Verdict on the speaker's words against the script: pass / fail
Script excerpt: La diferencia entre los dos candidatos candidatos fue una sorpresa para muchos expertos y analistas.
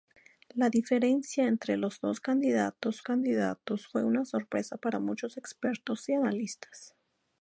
pass